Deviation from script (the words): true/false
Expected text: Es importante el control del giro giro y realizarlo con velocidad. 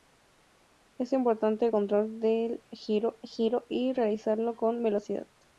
false